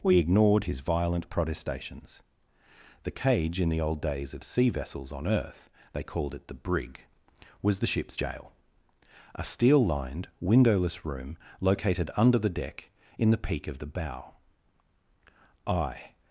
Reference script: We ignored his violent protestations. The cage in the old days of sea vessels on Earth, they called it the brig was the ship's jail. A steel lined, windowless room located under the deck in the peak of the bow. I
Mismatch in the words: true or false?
false